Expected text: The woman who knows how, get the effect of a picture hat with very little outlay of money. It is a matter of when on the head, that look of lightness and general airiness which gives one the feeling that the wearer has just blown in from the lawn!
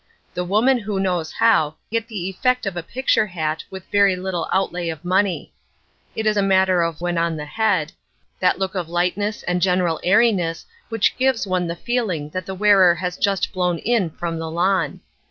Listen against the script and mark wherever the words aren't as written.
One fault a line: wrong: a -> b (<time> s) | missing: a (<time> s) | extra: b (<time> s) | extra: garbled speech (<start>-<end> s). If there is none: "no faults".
no faults